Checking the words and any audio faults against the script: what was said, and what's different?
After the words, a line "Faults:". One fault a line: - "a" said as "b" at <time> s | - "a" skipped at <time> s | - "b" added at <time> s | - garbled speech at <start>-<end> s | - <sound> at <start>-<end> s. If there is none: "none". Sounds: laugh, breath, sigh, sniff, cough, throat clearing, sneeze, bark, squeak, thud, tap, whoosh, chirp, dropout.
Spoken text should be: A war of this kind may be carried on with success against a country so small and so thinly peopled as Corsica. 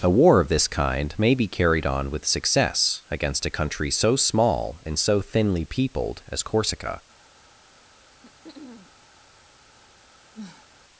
A war of this kind may be carried on with success against a country so small and so thinly peopled as Corsica.
Faults:
- throat clearing at 8.2-8.9 s
- sniff at 10.3-10.7 s